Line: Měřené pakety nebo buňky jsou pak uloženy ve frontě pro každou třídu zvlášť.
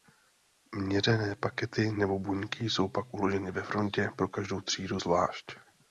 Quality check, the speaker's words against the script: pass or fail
pass